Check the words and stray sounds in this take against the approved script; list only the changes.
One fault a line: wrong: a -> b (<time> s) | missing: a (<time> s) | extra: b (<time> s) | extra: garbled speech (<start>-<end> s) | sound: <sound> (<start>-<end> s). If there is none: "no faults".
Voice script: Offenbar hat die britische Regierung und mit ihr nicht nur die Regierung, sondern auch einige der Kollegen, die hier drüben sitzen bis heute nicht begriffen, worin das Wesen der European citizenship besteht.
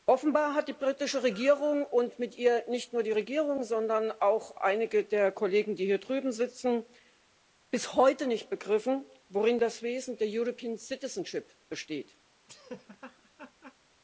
sound: laugh (12.5-13.7 s)